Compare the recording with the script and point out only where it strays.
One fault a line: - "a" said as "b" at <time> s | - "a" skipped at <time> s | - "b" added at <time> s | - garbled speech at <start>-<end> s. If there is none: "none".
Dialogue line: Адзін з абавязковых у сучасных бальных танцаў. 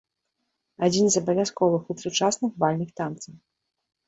none